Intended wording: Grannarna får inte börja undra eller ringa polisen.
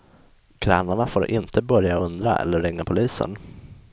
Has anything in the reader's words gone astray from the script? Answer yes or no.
no